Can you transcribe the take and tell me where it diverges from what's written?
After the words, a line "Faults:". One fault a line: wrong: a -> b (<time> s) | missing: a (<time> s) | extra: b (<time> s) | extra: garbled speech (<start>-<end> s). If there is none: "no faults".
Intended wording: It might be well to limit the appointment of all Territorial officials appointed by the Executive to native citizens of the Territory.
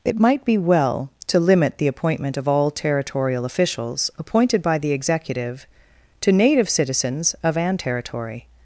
It might be well to limit the appointment of all Territorial officials appointed by the Executive to native citizens of an Territory.
Faults:
wrong: the -> an (7.5 s)